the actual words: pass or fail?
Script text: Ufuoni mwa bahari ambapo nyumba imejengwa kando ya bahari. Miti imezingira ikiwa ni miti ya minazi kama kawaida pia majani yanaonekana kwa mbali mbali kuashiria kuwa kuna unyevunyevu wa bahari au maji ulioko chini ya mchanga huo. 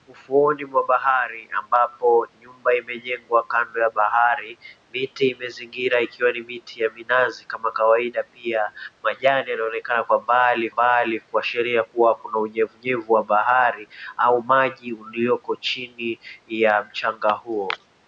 pass